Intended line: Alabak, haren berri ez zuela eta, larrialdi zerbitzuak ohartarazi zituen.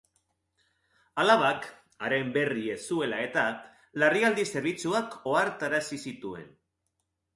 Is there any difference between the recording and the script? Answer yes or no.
no